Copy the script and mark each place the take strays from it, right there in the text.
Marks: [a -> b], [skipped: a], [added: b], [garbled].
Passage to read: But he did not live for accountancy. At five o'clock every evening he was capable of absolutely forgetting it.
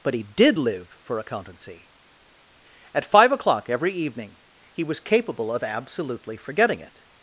But he did [skipped: not] live for accountancy. At five o'clock every evening he was capable of absolutely forgetting it.